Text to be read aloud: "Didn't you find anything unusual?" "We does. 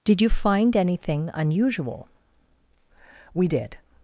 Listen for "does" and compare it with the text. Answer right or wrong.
wrong